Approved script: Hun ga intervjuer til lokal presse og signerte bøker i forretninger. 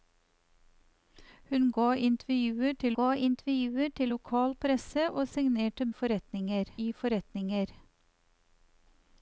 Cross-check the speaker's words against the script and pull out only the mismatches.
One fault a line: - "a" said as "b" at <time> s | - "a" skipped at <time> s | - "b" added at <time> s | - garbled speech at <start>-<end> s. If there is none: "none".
- "ga intervjuer til" added at 3.0 s
- "bøker" said as "forretninger" at 5.9 s